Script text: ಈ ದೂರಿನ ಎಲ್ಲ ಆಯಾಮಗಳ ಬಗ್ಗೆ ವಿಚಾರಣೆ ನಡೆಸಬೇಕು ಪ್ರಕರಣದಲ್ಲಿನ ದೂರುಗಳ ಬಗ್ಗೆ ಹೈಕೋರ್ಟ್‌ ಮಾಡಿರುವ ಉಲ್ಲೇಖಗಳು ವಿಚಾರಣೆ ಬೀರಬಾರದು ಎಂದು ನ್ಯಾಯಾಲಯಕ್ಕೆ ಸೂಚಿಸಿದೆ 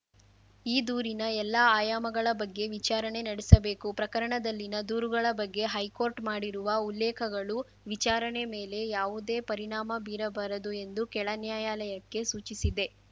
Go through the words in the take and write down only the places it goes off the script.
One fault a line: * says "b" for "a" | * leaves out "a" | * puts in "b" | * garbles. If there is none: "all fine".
* puts in "ಮೇಲೆ ಯಾವುದೇ ಪರಿಣಾಮ"
* puts in "ಕೆಳ"